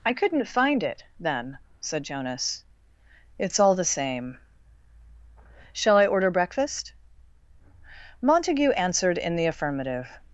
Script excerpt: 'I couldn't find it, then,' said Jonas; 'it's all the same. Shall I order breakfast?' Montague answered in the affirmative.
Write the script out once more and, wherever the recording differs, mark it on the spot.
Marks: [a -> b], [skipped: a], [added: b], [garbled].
'I couldn't find it, then,' said Jonas; 'it's all the same. Shall I order breakfast?' Montague answered in the affirmative.